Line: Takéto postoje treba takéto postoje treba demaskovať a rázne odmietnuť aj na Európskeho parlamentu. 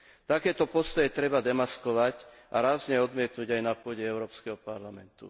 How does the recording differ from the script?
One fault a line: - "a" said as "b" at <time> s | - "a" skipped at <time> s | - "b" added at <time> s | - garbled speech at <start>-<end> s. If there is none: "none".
- "takéto postoje treba" skipped at 1.4 s
- "pôde" added at 3.7 s